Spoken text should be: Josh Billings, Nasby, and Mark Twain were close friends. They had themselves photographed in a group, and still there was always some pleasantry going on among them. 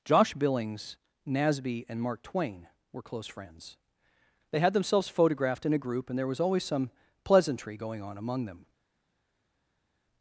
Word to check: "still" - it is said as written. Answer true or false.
false